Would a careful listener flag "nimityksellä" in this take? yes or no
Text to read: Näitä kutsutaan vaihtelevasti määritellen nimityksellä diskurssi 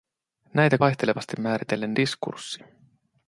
yes